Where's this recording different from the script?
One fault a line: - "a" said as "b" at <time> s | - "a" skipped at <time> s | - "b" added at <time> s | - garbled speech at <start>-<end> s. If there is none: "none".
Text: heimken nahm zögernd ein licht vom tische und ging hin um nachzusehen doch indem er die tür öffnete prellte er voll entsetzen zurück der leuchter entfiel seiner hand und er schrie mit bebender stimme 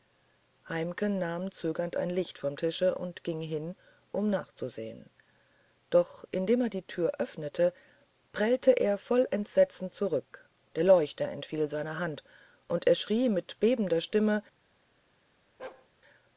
none